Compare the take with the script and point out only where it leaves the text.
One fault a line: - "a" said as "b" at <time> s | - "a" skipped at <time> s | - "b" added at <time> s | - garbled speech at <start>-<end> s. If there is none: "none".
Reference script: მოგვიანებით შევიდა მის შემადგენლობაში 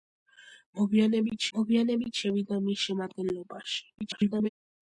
- "მოგვიანებით" added at 1.6 s
- garbled speech at 4.0-4.5 s